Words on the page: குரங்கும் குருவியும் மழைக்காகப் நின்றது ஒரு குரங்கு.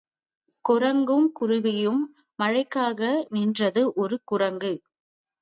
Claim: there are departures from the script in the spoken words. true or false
false